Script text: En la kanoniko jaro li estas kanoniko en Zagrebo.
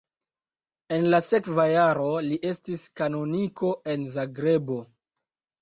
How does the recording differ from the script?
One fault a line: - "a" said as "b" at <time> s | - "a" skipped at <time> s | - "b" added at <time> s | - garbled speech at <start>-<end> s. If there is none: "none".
- "kanoniko" said as "sekva" at 1.3 s
- "estas" said as "estis" at 2.5 s